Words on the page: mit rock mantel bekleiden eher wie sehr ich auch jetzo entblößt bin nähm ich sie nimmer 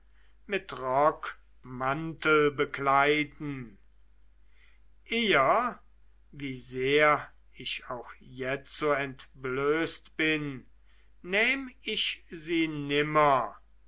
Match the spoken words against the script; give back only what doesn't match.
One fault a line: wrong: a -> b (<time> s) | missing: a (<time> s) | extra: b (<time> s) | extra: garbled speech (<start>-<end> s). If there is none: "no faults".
no faults